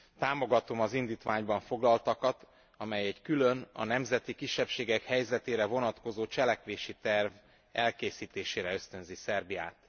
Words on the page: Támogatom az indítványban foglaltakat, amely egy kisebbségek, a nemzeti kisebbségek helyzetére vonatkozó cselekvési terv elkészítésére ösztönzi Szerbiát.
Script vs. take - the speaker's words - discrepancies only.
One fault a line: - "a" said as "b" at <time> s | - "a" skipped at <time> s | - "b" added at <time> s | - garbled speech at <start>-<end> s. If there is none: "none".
- "kisebbségek" said as "külön" at 3.2 s